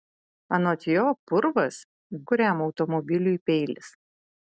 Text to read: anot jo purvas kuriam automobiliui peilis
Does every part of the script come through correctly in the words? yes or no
yes